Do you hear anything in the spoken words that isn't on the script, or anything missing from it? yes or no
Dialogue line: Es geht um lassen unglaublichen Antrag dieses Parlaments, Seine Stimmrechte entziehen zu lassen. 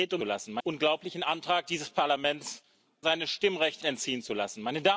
no